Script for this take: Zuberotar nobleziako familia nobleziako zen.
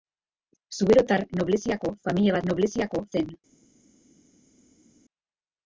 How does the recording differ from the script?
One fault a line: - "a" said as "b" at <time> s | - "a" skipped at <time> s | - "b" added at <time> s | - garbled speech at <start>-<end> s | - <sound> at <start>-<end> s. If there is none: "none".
none